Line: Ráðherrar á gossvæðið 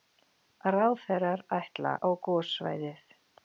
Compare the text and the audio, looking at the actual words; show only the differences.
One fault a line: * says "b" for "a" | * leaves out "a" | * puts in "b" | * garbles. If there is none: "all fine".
* puts in "ætla"